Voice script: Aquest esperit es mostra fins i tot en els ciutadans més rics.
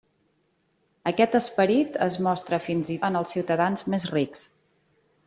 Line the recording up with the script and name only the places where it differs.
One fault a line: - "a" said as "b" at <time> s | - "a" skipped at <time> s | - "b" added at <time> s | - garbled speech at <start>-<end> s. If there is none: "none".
- "tot" skipped at 3.0 s